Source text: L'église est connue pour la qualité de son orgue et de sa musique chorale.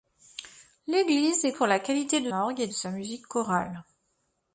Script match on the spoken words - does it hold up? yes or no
no